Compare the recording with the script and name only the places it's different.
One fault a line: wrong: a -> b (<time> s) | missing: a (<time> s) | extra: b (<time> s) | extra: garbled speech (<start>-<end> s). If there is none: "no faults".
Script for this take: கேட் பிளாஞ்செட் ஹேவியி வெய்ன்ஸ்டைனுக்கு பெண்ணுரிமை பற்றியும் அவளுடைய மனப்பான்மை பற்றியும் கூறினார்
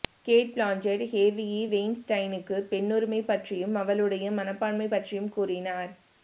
no faults